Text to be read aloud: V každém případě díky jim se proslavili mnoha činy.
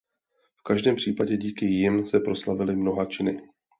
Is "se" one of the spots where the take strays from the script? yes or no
no